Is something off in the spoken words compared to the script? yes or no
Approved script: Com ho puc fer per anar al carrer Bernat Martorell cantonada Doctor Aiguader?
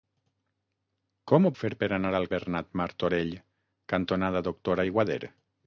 yes